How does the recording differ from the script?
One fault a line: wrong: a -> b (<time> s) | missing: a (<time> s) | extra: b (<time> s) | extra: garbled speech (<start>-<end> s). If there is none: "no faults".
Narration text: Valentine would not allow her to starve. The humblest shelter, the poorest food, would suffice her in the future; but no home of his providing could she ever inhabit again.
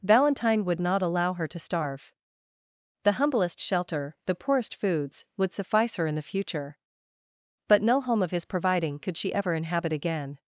wrong: food -> foods (4.8 s)